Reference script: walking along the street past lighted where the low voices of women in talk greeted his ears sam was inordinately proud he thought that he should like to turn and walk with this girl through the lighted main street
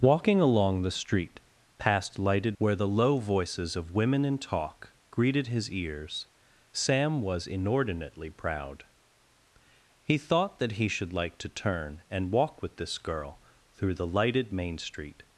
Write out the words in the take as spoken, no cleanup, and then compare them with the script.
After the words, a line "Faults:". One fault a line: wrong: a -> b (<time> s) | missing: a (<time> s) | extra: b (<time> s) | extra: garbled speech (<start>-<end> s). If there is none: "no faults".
walking along the street past lighted where the low voices of women in talk greeted his ears sam was inordinately proud he thought that he should like to turn and walk with this girl through the lighted main street
Faults:
no faults